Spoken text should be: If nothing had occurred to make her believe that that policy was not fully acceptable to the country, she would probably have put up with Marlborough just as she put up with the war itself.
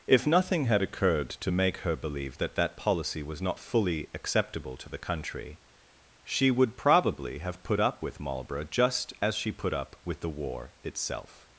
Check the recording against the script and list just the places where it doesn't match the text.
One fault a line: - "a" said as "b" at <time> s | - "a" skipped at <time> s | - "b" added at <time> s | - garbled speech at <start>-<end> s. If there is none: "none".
none